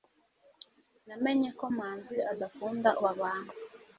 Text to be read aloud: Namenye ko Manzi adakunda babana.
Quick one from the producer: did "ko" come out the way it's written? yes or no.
yes